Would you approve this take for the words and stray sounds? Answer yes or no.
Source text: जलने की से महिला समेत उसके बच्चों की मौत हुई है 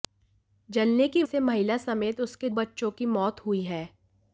yes